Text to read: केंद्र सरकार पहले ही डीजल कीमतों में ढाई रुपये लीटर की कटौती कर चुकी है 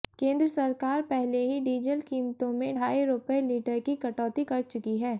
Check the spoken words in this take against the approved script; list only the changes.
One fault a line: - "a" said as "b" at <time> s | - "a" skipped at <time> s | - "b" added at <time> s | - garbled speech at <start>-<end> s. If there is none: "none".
none